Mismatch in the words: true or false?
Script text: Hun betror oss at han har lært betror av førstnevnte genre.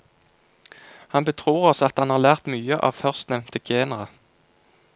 true